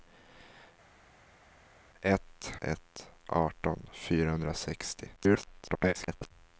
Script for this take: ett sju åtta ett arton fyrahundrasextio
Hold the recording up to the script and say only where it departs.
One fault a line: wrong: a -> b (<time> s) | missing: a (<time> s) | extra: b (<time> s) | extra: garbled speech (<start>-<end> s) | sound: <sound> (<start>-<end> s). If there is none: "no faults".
missing: sju åtta (2.5 s)
extra: garbled speech (5.2-6.3 s)